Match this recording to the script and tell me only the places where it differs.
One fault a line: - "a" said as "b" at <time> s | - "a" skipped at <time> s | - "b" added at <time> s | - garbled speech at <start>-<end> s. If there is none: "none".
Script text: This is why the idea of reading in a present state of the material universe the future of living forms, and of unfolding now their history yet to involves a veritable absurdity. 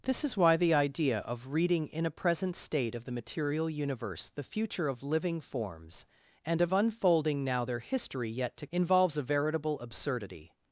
none